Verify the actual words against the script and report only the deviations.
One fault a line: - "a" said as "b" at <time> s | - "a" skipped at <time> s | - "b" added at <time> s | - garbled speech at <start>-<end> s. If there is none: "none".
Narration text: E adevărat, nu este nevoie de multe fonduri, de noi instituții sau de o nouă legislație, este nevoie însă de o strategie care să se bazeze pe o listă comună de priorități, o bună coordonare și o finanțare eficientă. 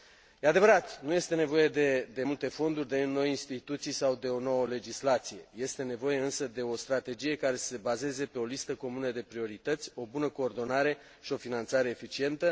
none